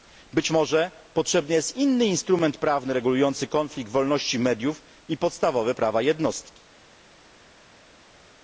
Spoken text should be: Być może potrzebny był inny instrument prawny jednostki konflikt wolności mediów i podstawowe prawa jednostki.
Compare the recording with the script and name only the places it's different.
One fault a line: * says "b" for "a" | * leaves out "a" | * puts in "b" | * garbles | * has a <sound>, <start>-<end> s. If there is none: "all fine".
* says "jest" for "był"
* says "regulujący" for "jednostki"